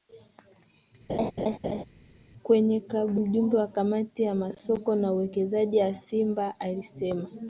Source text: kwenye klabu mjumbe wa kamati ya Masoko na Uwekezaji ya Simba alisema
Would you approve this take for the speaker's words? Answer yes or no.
yes